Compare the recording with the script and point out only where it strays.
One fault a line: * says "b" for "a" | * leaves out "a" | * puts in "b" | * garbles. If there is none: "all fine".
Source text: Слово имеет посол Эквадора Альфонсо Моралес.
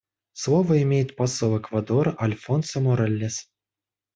all fine